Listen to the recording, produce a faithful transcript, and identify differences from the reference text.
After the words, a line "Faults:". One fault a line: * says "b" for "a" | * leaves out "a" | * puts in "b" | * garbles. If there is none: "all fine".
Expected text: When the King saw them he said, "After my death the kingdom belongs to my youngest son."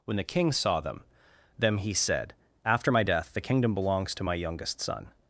When the King saw them them he said, "After my death the kingdom belongs to my youngest son."
Faults:
* puts in "them"